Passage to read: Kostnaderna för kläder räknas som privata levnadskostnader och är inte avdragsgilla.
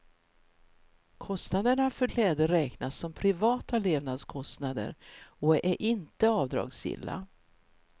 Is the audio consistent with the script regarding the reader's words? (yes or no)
yes